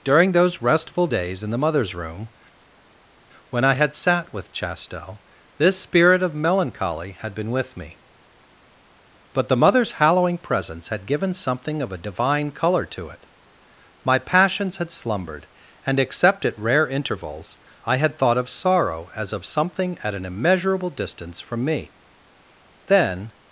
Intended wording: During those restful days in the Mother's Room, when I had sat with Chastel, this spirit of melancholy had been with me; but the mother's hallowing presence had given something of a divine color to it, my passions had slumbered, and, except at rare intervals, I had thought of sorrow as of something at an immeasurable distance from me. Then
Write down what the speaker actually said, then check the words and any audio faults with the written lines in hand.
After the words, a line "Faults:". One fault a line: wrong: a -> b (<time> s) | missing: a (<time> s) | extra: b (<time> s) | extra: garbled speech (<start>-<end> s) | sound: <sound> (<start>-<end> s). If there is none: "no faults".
During those restful days in the Mother's Room, when I had sat with Chastel, this spirit of melancholy had been with me; but the mother's hallowing presence had given something of a divine color to it, my passions had slumbered, and, except at rare intervals, I had thought of sorrow as of something at an immeasurable distance from me. Then
Faults:
no faults